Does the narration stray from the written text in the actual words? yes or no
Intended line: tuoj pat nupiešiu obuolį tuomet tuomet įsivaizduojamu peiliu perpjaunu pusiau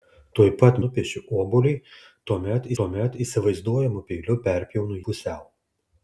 no